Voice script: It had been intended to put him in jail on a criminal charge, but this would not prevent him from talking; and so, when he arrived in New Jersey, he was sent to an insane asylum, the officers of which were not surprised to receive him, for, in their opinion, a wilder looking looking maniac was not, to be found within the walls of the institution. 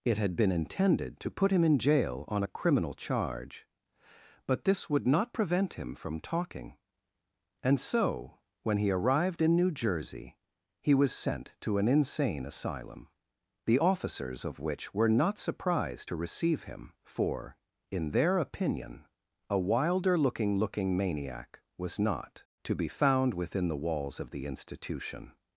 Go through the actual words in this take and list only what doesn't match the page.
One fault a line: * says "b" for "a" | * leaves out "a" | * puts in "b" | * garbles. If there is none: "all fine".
all fine